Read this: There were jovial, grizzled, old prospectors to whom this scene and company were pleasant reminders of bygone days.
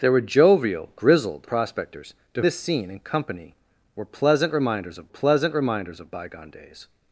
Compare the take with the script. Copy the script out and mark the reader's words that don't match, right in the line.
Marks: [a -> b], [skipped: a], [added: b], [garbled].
There were jovial, grizzled, [skipped: old] prospectors to [skipped: whom] this scene and company were pleasant reminders of [added: pleasant reminders of] bygone days.